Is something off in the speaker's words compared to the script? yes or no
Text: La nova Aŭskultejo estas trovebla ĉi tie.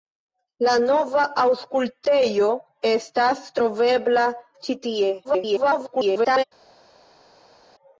yes